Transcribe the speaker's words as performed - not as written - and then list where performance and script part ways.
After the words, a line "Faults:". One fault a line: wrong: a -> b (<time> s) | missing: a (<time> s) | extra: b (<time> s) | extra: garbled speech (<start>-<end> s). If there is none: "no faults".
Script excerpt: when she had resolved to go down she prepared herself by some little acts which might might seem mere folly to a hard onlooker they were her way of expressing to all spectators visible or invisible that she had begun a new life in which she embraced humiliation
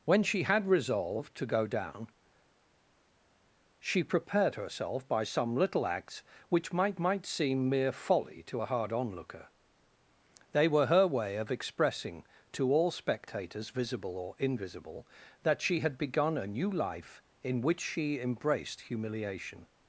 when she had resolved to go down she prepared herself by some little acts which might might seem mere folly to a hard onlooker they were her way of expressing to all spectators visible or invisible that she had begun a new life in which she embraced humiliation
Faults:
no faults